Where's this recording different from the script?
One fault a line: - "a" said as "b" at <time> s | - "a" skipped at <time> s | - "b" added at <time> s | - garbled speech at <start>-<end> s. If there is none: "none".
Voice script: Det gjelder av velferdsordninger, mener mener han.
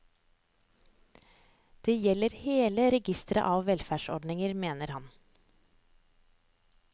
- "hele registeret" added at 2.4 s
- "mener" skipped at 4.9 s